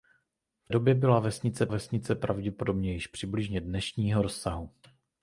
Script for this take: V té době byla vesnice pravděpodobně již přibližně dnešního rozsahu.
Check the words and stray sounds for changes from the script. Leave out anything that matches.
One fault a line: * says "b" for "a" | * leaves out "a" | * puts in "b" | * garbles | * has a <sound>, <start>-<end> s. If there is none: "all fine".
* leaves out "té"
* puts in "vesnice"